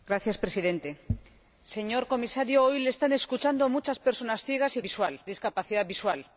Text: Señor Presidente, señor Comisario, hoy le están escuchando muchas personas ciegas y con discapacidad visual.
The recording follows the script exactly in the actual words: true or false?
false